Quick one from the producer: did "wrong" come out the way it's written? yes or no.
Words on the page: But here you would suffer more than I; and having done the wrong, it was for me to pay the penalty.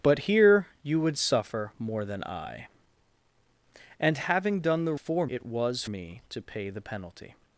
no